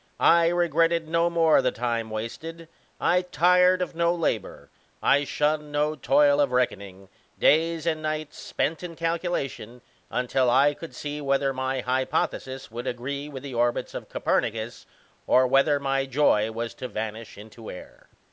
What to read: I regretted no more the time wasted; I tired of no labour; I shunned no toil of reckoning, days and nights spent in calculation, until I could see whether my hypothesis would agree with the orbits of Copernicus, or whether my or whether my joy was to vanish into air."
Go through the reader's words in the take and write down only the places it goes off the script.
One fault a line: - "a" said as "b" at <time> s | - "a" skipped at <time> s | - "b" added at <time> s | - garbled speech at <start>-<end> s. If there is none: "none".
- "or whether my" skipped at 16.0 s